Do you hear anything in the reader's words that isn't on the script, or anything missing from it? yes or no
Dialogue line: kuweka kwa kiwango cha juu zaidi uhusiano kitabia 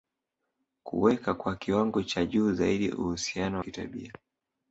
no